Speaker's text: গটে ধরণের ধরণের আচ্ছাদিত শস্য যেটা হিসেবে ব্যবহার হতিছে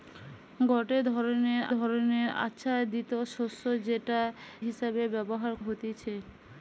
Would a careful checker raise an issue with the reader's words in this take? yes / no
no